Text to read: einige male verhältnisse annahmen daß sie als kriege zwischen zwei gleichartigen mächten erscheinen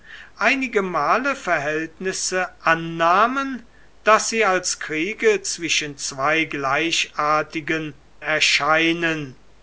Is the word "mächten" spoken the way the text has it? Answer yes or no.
no